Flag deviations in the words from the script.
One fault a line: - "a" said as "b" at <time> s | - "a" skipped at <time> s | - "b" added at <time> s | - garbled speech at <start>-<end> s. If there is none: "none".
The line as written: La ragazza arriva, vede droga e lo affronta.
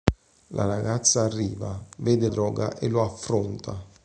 none